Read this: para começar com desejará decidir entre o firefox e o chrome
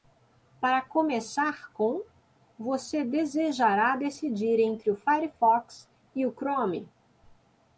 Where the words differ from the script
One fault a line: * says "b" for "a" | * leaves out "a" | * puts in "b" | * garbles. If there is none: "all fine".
* puts in "você"